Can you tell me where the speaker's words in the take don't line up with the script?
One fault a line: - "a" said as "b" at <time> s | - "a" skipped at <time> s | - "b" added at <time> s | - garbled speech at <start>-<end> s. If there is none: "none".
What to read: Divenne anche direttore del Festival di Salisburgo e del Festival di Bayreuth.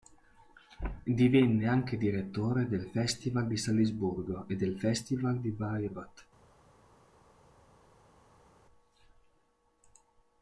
none